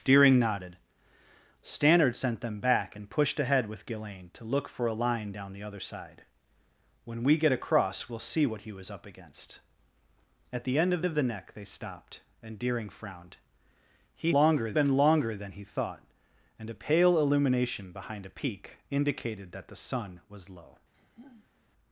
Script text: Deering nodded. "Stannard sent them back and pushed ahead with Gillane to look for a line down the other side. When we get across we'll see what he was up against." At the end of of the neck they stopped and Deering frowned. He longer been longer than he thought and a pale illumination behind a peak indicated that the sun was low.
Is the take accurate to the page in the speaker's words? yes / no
yes